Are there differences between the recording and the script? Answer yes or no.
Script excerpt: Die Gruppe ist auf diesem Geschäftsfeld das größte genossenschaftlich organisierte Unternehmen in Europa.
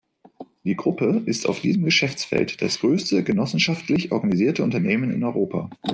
no